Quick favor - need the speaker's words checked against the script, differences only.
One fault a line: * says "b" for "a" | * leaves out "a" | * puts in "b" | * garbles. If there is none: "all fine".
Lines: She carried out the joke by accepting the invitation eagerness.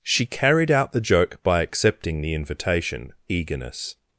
all fine